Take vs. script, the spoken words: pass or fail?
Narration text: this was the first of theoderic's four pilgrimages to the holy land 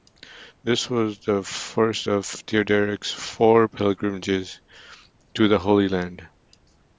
pass